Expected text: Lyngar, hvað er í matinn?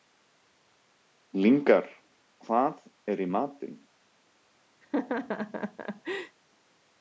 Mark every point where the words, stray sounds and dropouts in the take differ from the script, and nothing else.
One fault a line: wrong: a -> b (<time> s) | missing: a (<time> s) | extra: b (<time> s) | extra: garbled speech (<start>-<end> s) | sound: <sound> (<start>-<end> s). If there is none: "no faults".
sound: laugh (4.8-6.4 s)